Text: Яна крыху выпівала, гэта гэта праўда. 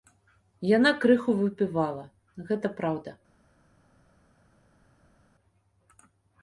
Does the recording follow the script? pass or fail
fail